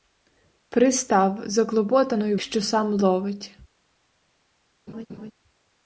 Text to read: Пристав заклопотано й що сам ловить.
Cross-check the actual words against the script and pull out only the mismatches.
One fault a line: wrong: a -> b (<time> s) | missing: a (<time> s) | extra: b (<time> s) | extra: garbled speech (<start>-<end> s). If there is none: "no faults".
no faults